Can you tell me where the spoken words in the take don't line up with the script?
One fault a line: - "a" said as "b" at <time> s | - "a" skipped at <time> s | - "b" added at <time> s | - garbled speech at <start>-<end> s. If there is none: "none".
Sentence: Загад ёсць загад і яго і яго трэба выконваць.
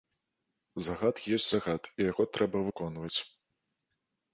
- "і яго" skipped at 2.3 s